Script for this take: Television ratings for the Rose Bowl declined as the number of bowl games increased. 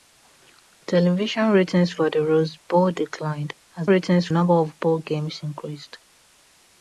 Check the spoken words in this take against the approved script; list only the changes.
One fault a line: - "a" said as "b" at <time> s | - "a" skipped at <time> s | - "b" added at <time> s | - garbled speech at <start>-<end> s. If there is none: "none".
- "the" said as "ratings" at 3.9 s